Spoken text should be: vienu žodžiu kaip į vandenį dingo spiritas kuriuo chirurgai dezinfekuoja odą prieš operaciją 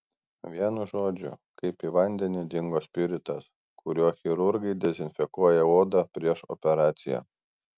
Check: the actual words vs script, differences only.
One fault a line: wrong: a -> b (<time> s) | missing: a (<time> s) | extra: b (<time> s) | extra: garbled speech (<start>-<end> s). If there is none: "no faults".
no faults